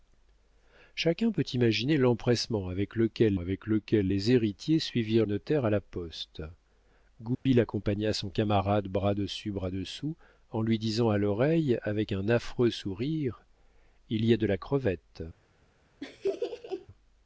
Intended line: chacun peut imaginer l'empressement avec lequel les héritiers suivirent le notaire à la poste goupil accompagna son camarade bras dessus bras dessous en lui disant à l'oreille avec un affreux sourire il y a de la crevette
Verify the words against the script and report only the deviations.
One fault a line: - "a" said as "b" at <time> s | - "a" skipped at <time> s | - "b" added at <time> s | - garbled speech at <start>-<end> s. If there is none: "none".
- "avec lequel" added at 3.4 s
- "le" skipped at 5.2 s